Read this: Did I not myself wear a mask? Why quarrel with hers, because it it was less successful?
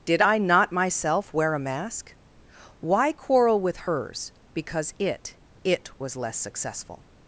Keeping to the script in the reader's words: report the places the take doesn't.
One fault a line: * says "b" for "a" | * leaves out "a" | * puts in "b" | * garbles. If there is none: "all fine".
all fine